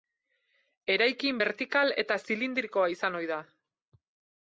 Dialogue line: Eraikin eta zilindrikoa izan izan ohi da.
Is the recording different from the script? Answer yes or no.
yes